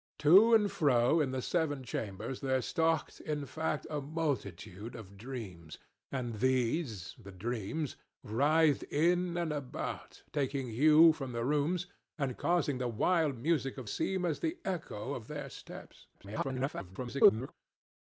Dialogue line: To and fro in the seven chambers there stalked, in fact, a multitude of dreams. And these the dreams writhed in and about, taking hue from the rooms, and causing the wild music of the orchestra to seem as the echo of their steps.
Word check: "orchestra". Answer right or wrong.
wrong